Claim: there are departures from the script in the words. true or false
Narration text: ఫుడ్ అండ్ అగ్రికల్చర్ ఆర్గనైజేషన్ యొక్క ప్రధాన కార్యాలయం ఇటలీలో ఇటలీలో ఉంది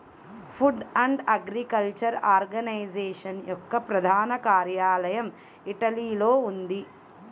true